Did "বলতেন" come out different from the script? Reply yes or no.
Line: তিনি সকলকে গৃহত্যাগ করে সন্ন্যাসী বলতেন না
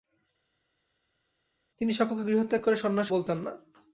no